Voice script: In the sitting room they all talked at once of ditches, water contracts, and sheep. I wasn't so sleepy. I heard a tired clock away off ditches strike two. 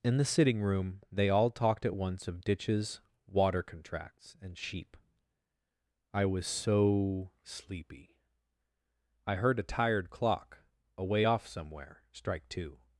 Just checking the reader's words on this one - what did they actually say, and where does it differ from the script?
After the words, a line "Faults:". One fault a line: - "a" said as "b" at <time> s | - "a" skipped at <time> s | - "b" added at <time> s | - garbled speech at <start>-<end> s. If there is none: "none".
In the sitting room they all talked at once of ditches, water contracts, and sheep. I was so sleepy. I heard a tired clock away off somewhere strike two.
Faults:
- "wasn't" said as "was" at 6.2 s
- "ditches" said as "somewhere" at 11.5 s